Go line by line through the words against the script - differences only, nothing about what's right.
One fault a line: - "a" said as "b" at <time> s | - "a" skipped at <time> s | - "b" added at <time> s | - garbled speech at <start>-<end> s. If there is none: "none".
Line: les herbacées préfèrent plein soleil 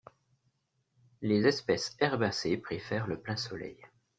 - "espèces" added at 1.4 s
- "le" added at 3.1 s